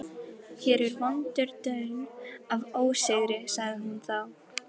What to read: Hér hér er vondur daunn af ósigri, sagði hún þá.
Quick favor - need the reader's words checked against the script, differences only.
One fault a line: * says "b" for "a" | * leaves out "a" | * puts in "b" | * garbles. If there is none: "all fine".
* leaves out "hér"